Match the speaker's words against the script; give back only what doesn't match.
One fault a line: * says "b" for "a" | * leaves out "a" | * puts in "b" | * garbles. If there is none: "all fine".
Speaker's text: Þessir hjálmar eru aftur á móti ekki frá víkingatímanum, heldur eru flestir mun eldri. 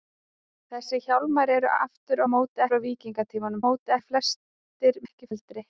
* leaves out "ekki"
* says "móti" for "heldur"
* says "ekki" for "mun"